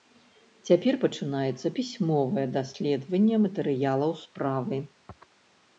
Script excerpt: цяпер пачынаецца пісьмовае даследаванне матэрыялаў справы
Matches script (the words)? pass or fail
pass